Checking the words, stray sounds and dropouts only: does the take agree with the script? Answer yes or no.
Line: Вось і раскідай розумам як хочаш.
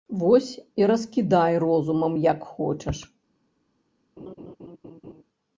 no